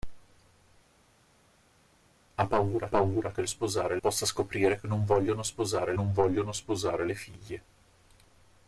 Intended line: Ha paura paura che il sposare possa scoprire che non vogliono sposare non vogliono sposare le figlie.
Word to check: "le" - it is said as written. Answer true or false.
true